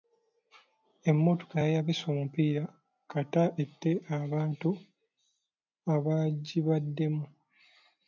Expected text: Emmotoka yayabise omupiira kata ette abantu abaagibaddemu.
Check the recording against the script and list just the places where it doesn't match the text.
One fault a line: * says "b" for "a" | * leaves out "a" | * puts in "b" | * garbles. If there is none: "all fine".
all fine